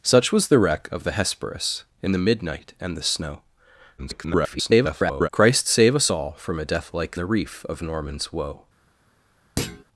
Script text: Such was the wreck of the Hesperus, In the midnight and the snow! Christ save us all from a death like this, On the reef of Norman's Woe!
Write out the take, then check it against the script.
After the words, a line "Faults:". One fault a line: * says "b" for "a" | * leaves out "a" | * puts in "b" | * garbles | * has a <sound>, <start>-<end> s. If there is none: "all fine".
Such was the wreck of the Hesperus, In the midnight and the snow! [garbled] Christ save us all from a death like the reef of Norman's Woe!
Faults:
* garbles
* leaves out "this On"
* has a thud, 9.6-9.8 s